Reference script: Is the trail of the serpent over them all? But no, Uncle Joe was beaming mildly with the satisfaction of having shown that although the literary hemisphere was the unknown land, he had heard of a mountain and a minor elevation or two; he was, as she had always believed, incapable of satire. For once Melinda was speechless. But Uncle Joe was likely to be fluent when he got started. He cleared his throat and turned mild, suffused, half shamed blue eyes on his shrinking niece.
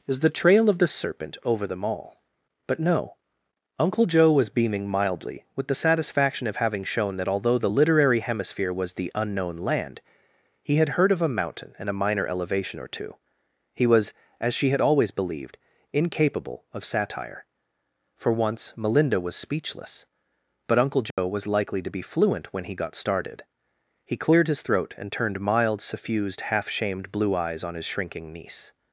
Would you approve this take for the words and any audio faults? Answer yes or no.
no